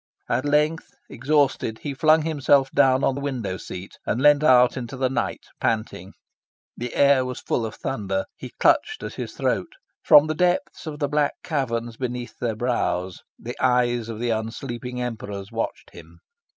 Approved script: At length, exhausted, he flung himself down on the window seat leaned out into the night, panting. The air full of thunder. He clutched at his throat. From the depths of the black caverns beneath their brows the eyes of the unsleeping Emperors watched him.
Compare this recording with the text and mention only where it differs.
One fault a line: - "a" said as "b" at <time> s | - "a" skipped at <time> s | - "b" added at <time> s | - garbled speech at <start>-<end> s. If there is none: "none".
- "and" added at 4.0 s
- "was" added at 7.2 s